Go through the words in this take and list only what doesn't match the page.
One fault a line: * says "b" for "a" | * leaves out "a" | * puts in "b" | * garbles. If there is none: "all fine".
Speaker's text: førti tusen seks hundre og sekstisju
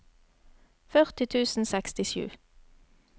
* leaves out "seks hundre og"